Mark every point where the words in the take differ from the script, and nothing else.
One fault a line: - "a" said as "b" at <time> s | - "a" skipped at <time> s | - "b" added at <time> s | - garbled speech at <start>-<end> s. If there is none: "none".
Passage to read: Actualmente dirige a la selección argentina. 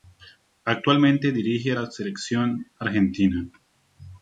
none